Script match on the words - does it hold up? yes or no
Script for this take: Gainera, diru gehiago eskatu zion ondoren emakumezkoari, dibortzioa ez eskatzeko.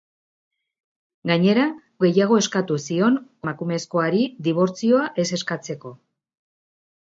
no